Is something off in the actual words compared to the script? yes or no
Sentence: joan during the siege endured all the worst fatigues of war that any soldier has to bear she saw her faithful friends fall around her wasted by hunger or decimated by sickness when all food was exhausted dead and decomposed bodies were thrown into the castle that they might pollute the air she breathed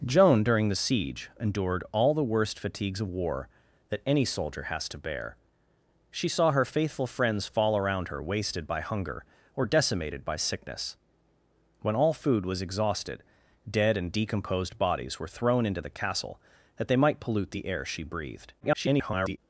yes